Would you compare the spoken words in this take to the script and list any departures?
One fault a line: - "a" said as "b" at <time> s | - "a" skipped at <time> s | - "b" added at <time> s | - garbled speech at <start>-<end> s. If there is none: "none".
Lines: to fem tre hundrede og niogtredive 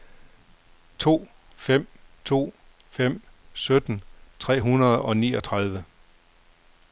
- "to fem sytten" added at 2.3 s